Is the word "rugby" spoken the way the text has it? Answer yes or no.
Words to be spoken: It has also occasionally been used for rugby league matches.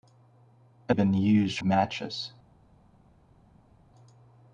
no